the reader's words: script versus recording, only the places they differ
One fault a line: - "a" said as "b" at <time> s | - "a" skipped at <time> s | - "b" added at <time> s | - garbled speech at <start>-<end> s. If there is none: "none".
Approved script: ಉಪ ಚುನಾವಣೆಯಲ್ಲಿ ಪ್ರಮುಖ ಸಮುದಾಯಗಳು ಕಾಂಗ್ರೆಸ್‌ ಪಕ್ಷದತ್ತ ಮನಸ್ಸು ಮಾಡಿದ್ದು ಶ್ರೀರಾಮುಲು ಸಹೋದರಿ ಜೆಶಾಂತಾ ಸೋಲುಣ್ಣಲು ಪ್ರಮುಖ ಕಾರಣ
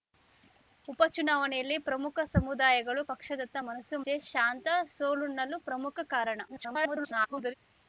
- "ಕಾಂಗ್ರೆಸ್" skipped at 3.0 s
- "ಮಾಡಿದ್ದು ಶ್ರೀರಾಮುಲು ಸಹೋದರಿ" skipped at 4.0 s
- garbled speech at 6.5-7.5 s